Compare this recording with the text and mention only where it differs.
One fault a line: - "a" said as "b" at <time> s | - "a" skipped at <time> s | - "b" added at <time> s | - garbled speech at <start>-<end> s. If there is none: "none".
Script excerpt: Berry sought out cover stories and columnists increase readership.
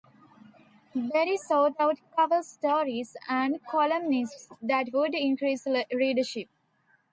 - "that would" added at 4.6 s